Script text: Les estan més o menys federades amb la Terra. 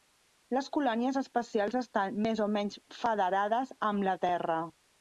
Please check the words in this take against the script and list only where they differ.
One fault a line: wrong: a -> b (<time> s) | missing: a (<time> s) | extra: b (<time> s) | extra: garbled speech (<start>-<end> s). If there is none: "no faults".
extra: colònies espacials (0.8 s)